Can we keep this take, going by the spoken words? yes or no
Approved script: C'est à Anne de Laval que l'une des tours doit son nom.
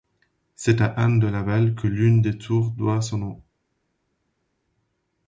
yes